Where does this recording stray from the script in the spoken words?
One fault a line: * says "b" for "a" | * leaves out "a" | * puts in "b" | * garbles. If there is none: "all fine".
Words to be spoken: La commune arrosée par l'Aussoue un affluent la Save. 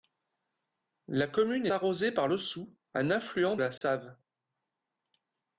all fine